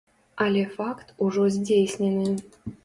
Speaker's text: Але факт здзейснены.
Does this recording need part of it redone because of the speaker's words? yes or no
yes